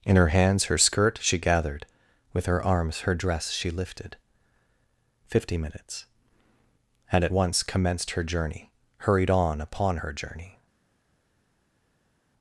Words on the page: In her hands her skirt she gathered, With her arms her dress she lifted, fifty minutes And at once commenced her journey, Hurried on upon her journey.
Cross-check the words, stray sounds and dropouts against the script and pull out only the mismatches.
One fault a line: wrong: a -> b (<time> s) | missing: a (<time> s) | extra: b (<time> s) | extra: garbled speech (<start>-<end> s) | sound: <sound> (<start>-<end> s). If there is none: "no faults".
no faults